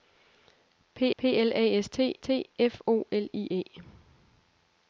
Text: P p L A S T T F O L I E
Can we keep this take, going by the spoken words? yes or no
yes